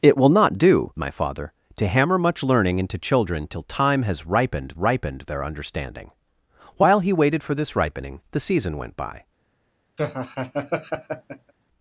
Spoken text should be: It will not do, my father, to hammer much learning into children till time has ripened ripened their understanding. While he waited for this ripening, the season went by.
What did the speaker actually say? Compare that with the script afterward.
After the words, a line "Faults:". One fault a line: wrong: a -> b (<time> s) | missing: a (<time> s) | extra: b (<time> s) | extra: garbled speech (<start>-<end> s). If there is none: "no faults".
It will not do, my father, to hammer much learning into children till time has ripened ripened their understanding. While he waited for this ripening, the season went by.
Faults:
no faults